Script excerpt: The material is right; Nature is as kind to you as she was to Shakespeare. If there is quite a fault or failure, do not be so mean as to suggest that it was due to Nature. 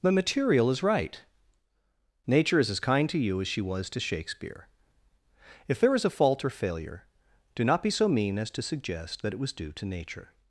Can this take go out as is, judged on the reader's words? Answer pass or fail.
fail